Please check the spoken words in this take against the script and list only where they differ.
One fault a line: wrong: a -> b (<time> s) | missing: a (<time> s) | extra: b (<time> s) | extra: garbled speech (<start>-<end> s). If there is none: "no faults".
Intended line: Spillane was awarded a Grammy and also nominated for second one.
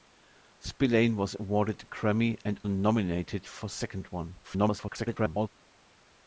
missing: also (2.6 s)
extra: garbled speech (4.4-5.5 s)